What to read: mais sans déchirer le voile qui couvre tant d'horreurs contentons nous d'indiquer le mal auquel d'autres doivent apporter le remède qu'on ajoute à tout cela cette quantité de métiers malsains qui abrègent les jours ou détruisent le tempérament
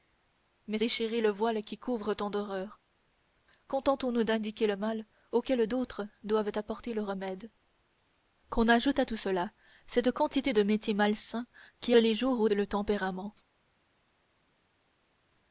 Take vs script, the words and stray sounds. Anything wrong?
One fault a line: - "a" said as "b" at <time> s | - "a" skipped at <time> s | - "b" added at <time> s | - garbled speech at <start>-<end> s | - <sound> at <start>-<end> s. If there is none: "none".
- "sans" skipped at 0.8 s
- "abrègent" skipped at 12.0 s
- "détruisent" skipped at 12.5 s